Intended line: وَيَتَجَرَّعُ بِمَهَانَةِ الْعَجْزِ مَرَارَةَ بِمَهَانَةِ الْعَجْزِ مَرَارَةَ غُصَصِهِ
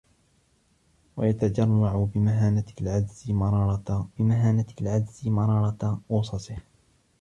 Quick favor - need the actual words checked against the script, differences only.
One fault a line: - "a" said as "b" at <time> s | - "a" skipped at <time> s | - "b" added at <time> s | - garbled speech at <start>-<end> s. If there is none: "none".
none